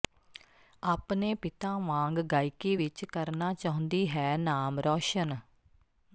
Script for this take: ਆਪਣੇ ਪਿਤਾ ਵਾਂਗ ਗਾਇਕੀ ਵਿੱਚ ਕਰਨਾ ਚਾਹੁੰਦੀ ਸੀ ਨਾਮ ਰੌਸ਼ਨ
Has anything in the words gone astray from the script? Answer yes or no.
yes